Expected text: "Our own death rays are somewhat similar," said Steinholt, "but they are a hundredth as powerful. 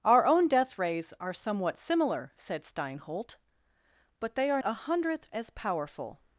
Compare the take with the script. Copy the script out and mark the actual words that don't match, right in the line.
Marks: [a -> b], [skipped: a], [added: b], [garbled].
"Our own death rays are somewhat similar," said Steinholt, "but they are a hundredth as powerful.